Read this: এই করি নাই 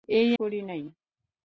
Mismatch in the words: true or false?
false